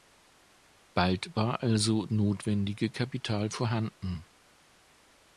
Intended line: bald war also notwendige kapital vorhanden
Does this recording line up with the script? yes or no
yes